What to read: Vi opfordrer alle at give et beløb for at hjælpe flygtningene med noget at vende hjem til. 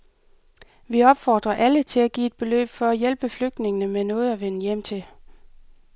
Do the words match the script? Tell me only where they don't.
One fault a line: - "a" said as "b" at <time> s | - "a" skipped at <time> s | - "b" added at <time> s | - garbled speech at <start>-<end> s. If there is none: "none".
- "til" added at 1.8 s